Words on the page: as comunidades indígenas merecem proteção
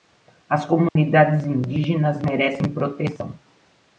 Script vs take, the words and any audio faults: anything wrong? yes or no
yes